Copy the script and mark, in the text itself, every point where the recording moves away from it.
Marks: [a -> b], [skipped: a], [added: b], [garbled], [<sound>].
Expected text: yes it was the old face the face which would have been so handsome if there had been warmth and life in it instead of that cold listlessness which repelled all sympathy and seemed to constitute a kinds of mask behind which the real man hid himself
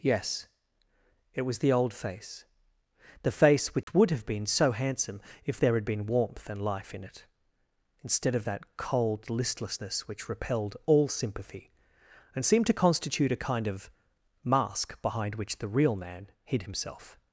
yes it was the old face the face which [dropout] would have been so handsome if there had been warmth and life in it instead of that cold listlessness which repelled all sympathy and seemed to constitute a [kinds -> kind] of mask behind which the real man hid himself